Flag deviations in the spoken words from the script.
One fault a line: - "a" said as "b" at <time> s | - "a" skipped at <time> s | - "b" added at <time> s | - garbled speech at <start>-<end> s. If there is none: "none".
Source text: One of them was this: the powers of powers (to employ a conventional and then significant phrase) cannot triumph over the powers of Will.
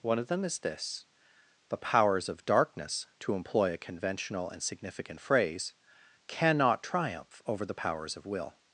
- "was" said as "is" at 0.4 s
- "powers" said as "darkness" at 2.4 s
- "then" skipped at 4.6 s